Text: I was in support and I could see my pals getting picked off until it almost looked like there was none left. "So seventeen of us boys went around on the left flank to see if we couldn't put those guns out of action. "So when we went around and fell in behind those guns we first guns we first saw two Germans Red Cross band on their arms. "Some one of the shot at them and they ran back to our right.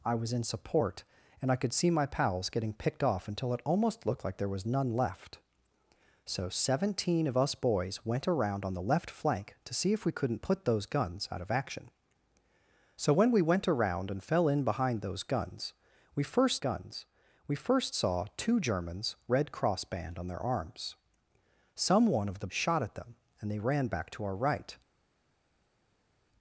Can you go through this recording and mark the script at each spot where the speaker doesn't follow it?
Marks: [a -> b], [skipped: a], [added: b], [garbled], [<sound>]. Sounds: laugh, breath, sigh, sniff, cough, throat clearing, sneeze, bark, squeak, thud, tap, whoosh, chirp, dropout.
I was in support and I could see my pals getting picked off until it almost looked like there was none left. "So seventeen of us boys went around on the left flank to see if we couldn't put those guns out of action. "So when we went around and fell in behind those guns we first guns we first saw two Germans Red Cross band on their arms. "Some one of the shot at them and they ran back to our right.